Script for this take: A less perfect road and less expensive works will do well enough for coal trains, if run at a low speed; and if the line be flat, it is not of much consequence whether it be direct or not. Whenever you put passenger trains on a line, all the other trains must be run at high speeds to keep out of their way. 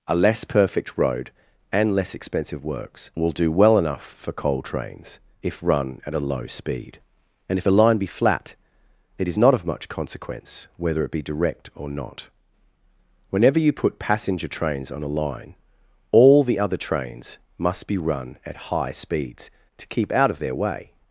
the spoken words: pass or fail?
fail